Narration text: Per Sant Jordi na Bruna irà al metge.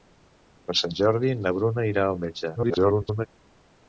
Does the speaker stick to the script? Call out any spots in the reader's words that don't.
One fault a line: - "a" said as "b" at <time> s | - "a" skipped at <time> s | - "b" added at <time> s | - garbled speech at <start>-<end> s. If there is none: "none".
- garbled speech at 2.6-3.3 s